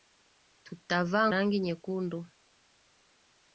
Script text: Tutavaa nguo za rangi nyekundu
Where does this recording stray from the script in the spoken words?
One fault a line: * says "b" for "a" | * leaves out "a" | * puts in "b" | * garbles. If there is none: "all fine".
* leaves out "nguo za"